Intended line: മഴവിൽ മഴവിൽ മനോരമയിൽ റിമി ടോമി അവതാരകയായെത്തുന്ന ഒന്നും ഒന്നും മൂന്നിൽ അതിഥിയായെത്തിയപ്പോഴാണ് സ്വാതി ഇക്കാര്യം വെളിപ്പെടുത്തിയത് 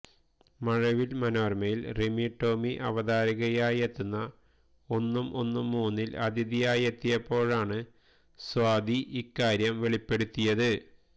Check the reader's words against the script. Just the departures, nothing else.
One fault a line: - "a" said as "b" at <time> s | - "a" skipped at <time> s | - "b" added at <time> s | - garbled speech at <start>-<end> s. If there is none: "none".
- "മഴവിൽ" skipped at 1.1 s